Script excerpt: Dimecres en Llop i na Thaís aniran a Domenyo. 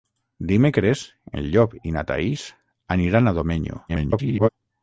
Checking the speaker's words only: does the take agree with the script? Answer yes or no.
no